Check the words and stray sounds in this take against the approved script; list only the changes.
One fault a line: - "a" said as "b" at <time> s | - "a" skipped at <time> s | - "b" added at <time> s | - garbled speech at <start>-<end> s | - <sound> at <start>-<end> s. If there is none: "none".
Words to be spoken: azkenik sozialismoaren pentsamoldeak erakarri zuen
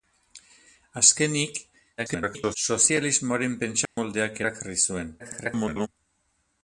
- garbled speech at 2.0-2.6 s
- dropout at 3.9-4.0 s
- garbled speech at 5.2-5.9 s